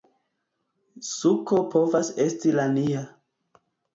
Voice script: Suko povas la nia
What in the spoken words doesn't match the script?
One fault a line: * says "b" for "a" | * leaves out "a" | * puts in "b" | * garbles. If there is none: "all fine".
* puts in "esti"